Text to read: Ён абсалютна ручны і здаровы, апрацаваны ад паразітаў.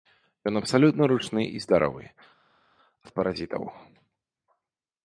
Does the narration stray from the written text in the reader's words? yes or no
yes